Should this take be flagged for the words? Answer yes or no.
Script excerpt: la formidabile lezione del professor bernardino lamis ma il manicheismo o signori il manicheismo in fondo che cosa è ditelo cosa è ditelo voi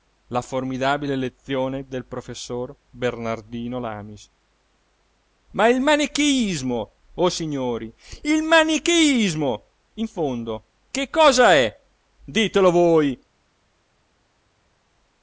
yes